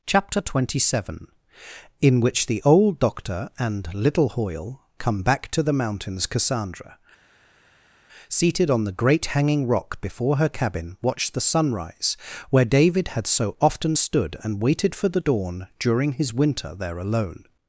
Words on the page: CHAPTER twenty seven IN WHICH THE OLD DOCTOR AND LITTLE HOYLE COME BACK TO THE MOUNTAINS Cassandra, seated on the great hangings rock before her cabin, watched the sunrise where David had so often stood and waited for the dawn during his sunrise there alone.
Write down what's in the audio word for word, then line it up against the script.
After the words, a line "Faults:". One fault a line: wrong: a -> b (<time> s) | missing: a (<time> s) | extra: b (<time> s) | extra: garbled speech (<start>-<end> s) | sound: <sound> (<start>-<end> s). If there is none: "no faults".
CHAPTER twenty seven IN WHICH THE OLD DOCTOR AND LITTLE HOYLE COME BACK TO THE MOUNTAINS Cassandra, seated on the great hanging rock before her cabin, watched the sunrise where David had so often stood and waited for the dawn during his winter there alone.
Faults:
wrong: hangings -> hanging (9.3 s)
wrong: sunrise -> winter (16.3 s)